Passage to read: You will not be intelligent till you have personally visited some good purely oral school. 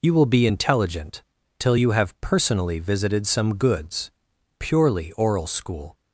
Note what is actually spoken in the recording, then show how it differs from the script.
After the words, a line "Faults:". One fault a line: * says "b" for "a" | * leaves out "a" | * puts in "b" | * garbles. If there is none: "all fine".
You will be intelligent till you have personally visited some goods purely oral school.
Faults:
* leaves out "not"
* says "goods" for "good"